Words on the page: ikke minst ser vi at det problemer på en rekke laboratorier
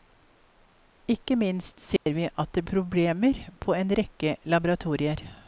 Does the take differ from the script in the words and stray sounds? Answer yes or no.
yes